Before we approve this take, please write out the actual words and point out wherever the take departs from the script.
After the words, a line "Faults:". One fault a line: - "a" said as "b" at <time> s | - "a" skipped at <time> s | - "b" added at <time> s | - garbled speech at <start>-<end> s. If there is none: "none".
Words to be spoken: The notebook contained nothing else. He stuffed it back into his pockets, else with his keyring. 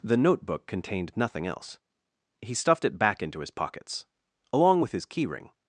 The notebook contained nothing else. He stuffed it back into his pockets, along with his keyring.
Faults:
- "else" said as "along" at 4.5 s